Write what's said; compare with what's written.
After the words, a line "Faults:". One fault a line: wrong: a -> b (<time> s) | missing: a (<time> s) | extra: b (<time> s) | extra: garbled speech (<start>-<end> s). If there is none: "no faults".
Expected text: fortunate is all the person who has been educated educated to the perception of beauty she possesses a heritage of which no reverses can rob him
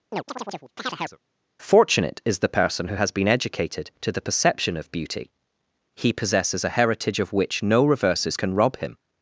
fortunate is the person who has been educated to the perception of beauty he possesses a heritage of which no reverses can rob him
Faults:
missing: all (2.4 s)
missing: educated (3.9 s)
wrong: she -> he (5.9 s)